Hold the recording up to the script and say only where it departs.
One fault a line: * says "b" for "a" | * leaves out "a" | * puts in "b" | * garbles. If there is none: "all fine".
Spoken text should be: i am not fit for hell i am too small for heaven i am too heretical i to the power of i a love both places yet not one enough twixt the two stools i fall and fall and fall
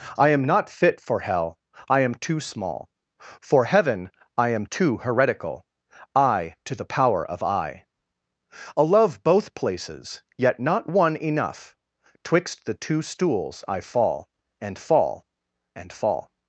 all fine